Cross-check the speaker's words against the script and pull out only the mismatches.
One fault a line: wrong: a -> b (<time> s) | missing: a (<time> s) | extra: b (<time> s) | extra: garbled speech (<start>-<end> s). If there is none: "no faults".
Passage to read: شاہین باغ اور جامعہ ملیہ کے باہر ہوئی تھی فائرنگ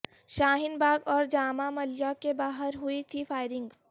no faults